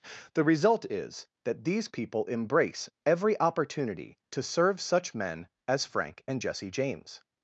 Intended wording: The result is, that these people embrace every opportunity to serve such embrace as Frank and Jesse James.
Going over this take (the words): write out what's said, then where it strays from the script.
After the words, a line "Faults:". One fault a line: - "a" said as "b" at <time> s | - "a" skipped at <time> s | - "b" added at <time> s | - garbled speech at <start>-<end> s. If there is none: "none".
The result is, that these people embrace every opportunity to serve such men as Frank and Jesse James.
Faults:
- "embrace" said as "men" at 5.1 s